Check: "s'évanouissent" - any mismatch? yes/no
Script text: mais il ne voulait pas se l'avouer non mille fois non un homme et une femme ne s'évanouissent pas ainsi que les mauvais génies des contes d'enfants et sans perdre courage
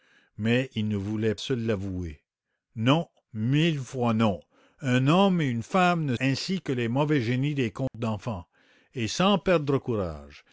yes